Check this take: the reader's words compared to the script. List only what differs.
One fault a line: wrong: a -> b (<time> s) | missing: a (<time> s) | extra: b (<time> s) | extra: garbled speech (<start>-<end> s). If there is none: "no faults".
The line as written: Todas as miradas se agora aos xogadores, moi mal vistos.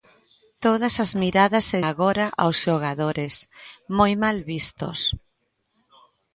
no faults